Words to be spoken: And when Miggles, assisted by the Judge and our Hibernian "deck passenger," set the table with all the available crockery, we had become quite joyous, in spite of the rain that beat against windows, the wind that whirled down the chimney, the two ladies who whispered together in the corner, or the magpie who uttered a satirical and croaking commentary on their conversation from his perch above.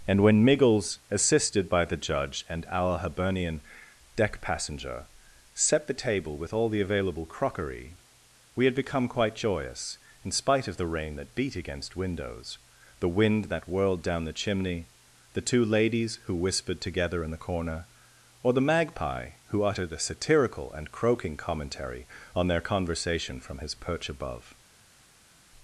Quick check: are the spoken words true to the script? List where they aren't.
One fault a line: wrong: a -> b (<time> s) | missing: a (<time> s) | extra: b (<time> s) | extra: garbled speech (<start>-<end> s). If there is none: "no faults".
no faults